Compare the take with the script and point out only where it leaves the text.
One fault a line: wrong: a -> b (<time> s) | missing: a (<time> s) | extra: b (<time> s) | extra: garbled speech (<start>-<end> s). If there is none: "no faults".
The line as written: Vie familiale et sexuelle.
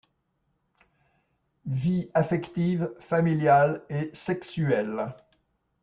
extra: affective (2.1 s)